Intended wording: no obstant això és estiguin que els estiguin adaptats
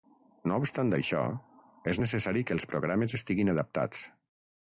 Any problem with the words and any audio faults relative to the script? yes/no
yes